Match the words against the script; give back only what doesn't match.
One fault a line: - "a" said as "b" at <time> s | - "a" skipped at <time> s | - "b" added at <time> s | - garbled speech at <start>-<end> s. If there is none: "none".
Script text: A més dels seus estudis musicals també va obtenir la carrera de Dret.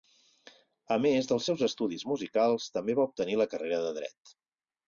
none